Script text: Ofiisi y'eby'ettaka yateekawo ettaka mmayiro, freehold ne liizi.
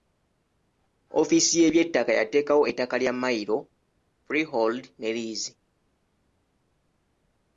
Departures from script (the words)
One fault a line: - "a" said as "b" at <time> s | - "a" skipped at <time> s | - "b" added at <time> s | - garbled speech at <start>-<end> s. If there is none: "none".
- "lya" added at 3.0 s